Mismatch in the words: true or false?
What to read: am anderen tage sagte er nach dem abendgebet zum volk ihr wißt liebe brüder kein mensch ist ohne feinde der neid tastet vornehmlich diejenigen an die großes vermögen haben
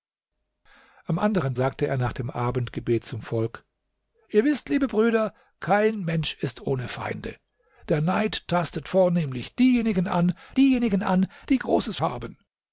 true